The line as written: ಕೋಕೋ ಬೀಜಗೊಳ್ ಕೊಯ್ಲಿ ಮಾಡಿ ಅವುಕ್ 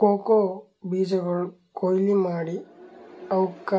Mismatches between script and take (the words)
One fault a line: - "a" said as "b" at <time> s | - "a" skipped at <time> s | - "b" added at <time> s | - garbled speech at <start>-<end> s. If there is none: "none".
none